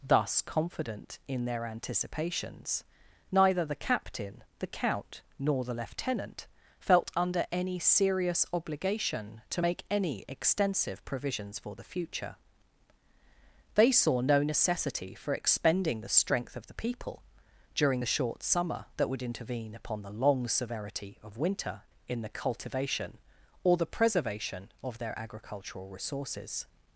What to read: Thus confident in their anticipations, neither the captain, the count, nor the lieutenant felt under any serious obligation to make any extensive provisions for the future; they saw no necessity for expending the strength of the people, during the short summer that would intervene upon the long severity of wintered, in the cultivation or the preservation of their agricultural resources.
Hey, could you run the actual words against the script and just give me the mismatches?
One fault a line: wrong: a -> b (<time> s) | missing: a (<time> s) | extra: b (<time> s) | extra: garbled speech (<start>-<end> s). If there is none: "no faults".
wrong: wintered -> winter (21.4 s)